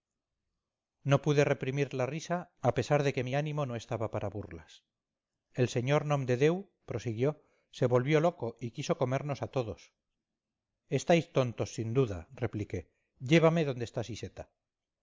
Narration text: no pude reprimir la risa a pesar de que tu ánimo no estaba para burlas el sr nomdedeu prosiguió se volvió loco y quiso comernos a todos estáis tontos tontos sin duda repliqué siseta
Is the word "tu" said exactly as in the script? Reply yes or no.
no